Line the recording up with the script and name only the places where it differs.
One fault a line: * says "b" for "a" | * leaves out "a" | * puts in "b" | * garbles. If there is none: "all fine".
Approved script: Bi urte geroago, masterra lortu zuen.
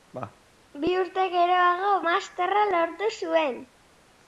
all fine